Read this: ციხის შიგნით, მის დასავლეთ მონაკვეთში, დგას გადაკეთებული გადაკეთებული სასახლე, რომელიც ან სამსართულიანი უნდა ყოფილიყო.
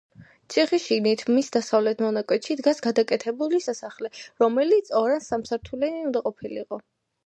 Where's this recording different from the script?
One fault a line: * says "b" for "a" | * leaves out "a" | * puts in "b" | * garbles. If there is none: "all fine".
* leaves out "გადაკეთებული"
* puts in "ორ"